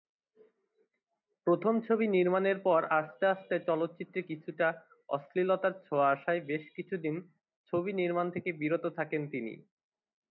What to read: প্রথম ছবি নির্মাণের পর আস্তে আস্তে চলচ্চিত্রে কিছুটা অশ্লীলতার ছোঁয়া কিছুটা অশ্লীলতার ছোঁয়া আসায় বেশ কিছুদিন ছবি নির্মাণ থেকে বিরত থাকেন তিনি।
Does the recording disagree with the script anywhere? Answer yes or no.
yes